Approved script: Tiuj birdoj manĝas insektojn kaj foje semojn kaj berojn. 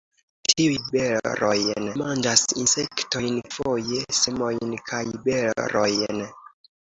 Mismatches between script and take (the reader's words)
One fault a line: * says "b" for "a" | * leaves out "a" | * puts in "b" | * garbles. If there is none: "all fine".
* says "berojn" for "birdoj"
* leaves out "kaj"